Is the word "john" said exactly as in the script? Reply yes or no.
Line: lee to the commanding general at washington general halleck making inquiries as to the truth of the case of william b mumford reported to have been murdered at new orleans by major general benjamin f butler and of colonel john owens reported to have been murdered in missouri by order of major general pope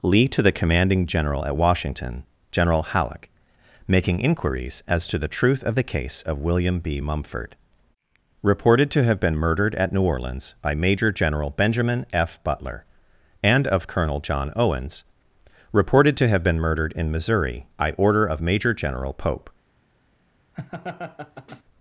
yes